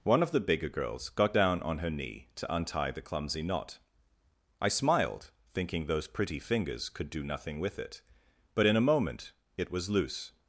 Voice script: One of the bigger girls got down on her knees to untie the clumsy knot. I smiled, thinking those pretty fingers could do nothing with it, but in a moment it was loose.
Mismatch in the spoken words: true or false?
true